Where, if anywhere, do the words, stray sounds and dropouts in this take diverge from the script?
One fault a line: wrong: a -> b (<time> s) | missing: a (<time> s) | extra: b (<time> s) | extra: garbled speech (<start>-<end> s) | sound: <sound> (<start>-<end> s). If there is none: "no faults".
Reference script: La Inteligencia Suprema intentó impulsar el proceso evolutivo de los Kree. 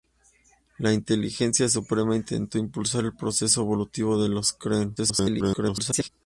extra: garbled speech (5.0-6.1 s)